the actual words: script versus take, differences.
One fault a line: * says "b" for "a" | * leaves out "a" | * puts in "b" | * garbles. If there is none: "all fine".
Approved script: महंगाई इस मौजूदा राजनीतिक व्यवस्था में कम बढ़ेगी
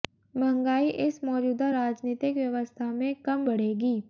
all fine